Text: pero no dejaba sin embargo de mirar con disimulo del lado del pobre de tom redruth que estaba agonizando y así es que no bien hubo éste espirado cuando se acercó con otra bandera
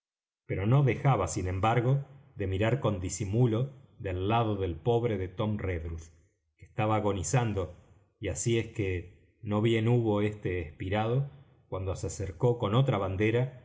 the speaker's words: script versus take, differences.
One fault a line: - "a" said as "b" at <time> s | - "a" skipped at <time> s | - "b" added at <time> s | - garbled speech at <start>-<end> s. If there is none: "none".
none